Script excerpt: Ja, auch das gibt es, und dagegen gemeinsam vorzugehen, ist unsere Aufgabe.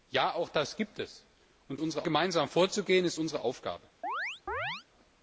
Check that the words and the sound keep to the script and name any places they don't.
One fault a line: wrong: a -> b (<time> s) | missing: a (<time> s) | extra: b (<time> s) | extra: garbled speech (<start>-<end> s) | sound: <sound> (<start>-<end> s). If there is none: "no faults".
wrong: dagegen -> unsere (1.8 s)
sound: chirp (4.0-4.8 s)